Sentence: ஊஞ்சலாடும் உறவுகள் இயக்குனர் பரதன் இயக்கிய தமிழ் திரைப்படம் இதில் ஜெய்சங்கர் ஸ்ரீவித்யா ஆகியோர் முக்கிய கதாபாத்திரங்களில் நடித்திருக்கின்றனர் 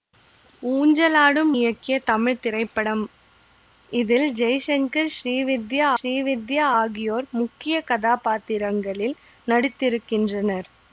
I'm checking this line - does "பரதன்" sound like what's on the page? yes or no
no